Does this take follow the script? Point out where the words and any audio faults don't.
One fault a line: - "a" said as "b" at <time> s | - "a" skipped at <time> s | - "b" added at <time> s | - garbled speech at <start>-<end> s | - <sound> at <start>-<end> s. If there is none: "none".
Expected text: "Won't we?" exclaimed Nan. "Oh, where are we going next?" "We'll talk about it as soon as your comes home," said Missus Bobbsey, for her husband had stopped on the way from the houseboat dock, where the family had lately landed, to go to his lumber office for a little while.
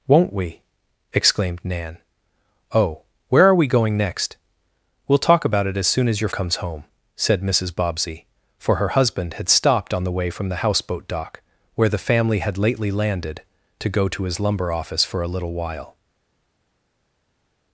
none